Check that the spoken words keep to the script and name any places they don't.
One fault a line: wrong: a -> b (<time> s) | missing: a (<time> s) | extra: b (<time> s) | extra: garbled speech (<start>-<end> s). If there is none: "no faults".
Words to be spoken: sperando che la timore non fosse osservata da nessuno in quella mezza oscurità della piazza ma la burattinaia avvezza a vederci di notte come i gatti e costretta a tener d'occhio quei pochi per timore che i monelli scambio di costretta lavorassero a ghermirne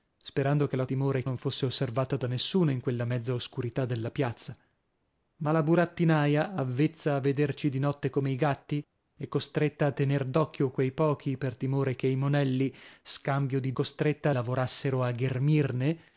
no faults